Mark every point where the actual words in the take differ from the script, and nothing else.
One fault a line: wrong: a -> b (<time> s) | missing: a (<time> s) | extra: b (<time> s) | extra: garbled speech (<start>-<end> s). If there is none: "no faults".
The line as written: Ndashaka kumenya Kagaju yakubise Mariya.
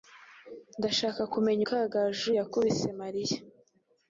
no faults